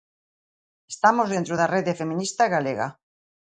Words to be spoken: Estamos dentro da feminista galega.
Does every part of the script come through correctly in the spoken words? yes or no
no